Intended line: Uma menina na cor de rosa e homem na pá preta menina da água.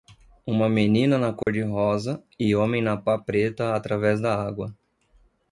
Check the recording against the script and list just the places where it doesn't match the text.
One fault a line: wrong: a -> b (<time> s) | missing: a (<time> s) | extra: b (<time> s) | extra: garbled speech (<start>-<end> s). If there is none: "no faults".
wrong: menina -> através (3.7 s)